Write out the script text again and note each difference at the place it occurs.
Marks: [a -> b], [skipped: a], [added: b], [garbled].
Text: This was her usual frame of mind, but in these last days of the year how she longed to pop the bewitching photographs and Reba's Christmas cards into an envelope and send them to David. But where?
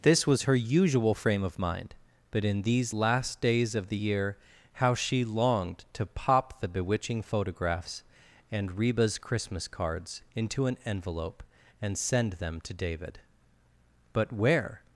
This was her usual frame of mind, but in these last days of the year how she longed to pop the bewitching photographs and Reba's Christmas cards into an envelope and send them to David. But where?